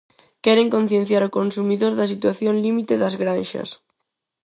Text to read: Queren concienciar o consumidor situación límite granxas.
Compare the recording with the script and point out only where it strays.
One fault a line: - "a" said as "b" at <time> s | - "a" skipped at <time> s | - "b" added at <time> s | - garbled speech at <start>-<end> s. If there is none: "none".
- "da" added at 1.9 s
- "das" added at 3.0 s